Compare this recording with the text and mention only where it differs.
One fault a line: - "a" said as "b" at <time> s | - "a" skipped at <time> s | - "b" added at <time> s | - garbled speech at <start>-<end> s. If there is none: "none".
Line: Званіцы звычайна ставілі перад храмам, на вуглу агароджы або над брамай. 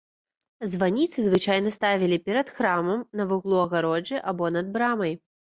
none